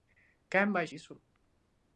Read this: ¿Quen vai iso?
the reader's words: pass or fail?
pass